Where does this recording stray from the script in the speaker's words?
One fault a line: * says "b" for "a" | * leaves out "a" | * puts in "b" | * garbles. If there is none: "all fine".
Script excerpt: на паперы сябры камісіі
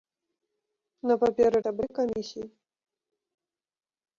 all fine